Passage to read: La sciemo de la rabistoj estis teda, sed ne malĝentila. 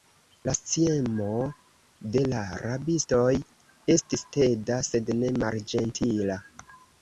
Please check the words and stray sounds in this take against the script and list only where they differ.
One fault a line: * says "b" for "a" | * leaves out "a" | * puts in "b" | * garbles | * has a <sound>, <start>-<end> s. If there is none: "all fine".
all fine